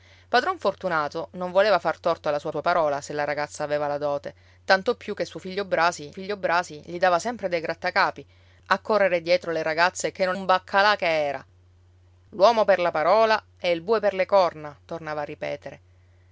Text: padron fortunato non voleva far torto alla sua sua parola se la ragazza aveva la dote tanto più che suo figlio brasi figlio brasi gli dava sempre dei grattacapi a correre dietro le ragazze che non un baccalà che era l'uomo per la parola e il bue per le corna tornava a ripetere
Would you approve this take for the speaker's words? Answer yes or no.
yes